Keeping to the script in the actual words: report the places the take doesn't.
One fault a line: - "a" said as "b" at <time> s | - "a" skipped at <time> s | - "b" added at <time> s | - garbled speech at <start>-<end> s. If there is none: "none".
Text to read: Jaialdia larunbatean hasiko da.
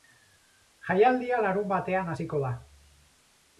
none